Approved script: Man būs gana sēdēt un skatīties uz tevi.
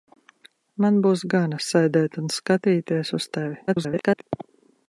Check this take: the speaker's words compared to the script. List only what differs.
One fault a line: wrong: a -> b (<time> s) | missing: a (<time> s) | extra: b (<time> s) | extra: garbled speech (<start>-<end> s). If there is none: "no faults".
extra: garbled speech (3.7-4.2 s)